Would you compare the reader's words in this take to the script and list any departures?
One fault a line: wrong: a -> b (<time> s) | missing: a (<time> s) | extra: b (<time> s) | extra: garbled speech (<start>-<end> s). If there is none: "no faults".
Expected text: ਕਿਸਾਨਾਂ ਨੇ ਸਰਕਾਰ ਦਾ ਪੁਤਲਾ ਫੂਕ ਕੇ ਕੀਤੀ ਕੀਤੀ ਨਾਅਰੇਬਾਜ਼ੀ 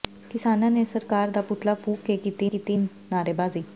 no faults